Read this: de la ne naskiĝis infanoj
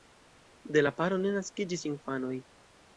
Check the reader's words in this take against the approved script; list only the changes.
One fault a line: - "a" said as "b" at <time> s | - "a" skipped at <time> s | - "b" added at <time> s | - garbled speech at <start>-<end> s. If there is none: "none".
- "paro" added at 1.0 s